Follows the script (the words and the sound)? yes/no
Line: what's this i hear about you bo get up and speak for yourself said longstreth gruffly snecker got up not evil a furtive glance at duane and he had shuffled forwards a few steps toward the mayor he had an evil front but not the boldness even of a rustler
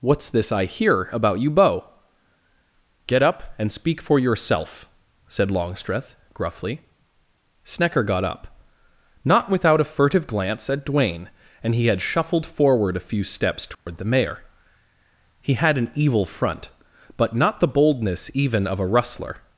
no